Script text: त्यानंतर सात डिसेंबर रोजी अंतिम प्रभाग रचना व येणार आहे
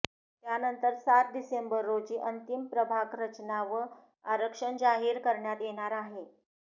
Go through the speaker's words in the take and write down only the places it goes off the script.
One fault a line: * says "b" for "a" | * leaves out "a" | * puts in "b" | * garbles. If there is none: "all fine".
* puts in "आरक्षण जाहीर करण्यात"